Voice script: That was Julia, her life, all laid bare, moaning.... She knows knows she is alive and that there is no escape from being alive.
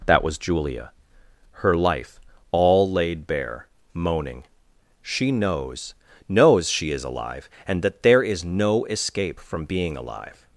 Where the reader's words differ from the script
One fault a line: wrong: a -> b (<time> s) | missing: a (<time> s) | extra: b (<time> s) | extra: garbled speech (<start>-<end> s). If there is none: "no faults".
no faults